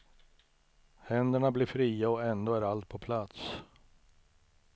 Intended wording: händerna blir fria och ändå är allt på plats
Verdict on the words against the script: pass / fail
pass